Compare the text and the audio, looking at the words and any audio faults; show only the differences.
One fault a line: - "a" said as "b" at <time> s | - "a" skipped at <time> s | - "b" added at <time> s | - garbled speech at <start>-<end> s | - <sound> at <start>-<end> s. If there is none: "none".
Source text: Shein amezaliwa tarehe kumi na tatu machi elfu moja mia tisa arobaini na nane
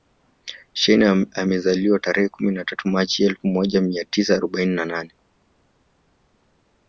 none